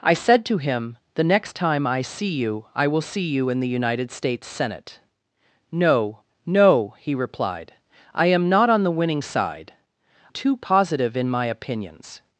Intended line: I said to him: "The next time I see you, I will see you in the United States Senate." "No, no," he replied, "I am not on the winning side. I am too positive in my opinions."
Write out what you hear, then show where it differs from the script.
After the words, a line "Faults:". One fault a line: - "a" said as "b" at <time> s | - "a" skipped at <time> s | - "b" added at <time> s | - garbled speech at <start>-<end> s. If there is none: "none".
I said to him: "The next time I see you, I will see you in the United States Senate." "No, no," he replied, "I am not on the winning side. too positive in my opinions."
Faults:
- "I am" skipped at 9.7 s